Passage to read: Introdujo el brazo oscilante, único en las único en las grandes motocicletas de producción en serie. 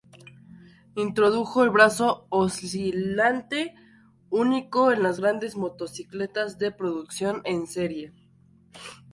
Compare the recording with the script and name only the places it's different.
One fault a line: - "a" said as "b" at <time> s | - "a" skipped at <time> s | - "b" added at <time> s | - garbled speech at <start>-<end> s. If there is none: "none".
- "único en las" skipped at 5.2 s